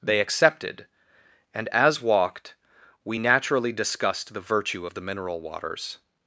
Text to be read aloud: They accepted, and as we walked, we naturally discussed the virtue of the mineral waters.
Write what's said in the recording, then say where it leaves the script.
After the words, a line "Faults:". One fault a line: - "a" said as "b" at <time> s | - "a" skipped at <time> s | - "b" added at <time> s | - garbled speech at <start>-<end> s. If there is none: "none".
They accepted, and as walked, we naturally discussed the virtue of the mineral waters.
Faults:
- "we" skipped at 2.0 s